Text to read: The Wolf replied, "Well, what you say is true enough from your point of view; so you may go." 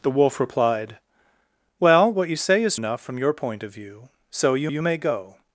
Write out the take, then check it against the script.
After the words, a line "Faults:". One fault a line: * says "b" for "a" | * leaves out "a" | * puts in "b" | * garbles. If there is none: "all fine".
The Wolf replied, "Well, what you say is enough from your point of view; so you you may go."
Faults:
* leaves out "true"
* puts in "you"